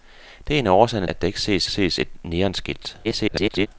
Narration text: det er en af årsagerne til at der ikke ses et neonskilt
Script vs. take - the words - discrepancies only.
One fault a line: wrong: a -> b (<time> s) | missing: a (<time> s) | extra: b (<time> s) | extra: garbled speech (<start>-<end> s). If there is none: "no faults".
missing: til (1.1 s)
extra: ses (1.7 s)
extra: garbled speech (3.0-3.7 s)